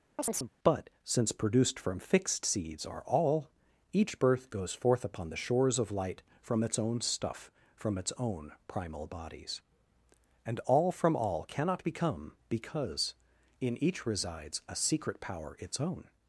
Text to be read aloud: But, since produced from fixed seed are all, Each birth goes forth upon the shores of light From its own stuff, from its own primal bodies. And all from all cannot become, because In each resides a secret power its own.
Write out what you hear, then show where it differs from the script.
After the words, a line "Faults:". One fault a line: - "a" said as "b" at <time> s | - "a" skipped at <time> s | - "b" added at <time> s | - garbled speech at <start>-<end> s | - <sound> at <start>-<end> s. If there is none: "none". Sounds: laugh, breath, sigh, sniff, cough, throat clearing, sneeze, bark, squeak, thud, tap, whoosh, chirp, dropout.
But, since produced from fixed seeds are all, Each birth goes forth upon the shores of light From its own stuff, from its own primal bodies. And all from all cannot become, because In each resides a secret power its own.
Faults:
- chirp at 0.2-0.5 s
- "seed" said as "seeds" at 2.5 s